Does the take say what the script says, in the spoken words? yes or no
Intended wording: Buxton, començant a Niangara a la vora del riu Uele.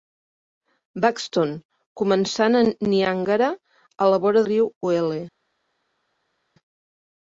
no